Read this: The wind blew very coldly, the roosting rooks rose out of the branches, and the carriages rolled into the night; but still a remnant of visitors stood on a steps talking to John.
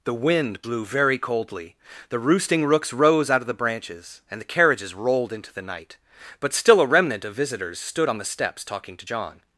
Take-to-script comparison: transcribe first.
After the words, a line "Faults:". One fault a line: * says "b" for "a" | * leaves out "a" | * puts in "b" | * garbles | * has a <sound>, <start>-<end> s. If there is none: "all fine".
The wind blew very coldly, the roosting rooks rose out of the branches, and the carriages rolled into the night; but still a remnant of visitors stood on the steps talking to John.
Faults:
* says "the" for "a"